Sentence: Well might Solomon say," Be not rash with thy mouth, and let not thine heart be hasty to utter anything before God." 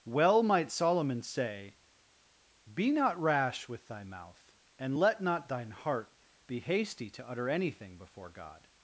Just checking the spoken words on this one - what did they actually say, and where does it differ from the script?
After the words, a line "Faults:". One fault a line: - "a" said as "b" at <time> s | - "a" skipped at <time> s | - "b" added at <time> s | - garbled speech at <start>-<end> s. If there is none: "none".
Well might Solomon say," Be not rash with thy mouth, and let not thine heart be hasty to utter anything before God."
Faults:
none